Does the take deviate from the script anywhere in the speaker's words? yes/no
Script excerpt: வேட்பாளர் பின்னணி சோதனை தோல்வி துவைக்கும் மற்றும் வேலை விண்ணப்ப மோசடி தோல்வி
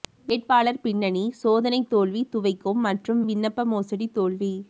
yes